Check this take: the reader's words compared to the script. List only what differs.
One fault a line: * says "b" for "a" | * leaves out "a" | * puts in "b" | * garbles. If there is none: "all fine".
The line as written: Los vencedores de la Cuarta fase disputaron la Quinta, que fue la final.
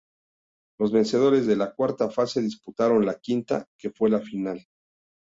all fine